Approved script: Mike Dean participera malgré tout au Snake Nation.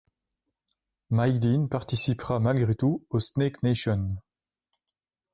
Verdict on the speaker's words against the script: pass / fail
pass